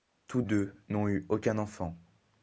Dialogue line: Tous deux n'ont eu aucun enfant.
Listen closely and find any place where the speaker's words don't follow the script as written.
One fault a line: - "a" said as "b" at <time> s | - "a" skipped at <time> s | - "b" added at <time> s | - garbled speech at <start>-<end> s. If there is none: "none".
none